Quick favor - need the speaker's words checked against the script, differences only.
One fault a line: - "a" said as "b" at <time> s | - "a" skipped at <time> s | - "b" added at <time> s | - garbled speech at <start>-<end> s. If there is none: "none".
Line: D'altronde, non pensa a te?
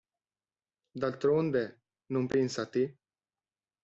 none